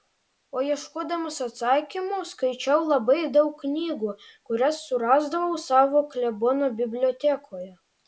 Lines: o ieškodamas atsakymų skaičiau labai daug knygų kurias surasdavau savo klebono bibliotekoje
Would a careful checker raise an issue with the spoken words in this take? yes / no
no